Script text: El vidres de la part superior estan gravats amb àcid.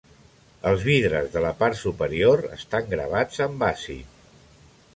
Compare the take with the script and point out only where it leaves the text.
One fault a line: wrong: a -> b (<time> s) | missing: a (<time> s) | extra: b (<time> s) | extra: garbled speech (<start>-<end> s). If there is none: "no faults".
wrong: El -> Els (0.7 s)